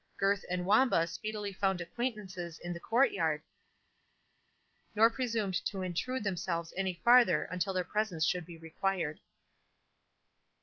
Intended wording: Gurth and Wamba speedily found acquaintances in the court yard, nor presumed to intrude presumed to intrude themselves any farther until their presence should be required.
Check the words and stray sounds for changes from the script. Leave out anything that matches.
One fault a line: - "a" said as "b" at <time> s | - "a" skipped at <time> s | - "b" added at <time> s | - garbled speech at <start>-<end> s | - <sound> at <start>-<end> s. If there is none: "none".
- "presumed to intrude" skipped at 6.2 s